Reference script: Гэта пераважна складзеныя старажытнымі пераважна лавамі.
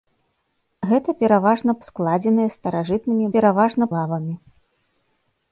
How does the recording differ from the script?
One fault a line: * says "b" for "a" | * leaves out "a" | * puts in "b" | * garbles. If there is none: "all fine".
all fine